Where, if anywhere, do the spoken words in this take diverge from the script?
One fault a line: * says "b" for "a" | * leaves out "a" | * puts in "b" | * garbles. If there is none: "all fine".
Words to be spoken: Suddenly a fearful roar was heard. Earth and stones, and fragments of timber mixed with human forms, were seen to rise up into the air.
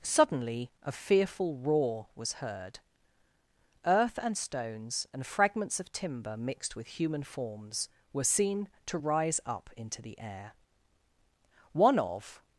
* puts in "One of"